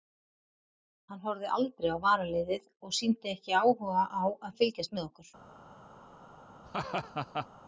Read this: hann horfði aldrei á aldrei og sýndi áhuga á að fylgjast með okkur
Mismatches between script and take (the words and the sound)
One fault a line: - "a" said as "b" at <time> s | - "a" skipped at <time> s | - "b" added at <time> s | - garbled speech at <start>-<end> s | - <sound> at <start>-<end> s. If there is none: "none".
- "aldrei" said as "varaliðið" at 2.0 s
- "ekki" added at 3.3 s
- laugh at 6.6-7.5 s